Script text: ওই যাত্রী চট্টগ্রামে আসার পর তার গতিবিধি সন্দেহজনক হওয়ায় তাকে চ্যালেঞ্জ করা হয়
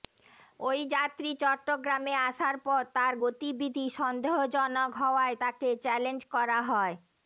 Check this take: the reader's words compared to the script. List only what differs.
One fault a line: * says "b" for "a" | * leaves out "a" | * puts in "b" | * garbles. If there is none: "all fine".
all fine